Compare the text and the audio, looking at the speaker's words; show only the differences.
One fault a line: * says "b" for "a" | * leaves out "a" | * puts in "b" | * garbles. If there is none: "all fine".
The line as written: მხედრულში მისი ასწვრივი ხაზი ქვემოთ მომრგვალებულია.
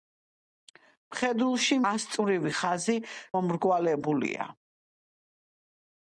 * leaves out "მისი"
* leaves out "ქვემოთ"